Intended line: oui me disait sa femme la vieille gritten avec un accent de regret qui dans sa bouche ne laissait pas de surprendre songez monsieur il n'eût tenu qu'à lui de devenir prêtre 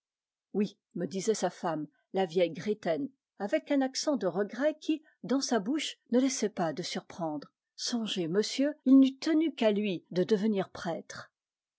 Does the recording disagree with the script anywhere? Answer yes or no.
no